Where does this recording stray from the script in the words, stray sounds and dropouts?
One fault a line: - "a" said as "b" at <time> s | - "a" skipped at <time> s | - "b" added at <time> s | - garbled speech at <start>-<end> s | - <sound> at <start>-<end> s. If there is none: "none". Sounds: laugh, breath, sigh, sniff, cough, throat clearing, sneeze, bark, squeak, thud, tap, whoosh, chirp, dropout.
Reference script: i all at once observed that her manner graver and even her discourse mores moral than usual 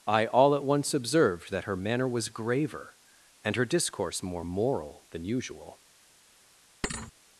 - "was" added at 2.1 s
- "even" skipped at 3.5 s
- "mores" said as "more" at 4.2 s
- thud at 6.8-7.1 s